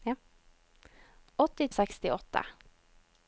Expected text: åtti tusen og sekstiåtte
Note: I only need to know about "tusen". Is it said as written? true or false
false